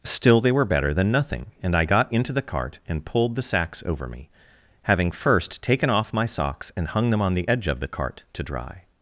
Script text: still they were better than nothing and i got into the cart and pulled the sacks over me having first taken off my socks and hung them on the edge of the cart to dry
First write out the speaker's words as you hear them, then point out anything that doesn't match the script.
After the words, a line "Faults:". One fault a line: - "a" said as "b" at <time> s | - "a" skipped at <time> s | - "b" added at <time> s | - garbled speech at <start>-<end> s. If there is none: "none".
still they were better than nothing and i got into the cart and pulled the sacks over me having first taken off my socks and hung them on the edge of the cart to dry
Faults:
none